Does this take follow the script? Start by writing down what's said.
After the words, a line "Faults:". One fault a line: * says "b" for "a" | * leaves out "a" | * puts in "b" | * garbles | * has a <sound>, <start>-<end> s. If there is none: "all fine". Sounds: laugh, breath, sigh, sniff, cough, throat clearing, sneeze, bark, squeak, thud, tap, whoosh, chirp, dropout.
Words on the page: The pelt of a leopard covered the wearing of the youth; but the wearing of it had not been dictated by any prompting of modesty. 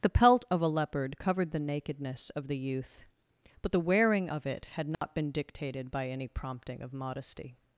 The pelt of a leopard covered the nakedness of the youth; but the wearing of it had not been dictated by any prompting of modesty.
Faults:
* says "nakedness" for "wearing"
* has a dropout, 4.9-5.0 s